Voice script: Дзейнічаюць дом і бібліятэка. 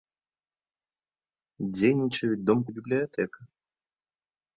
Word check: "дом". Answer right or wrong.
right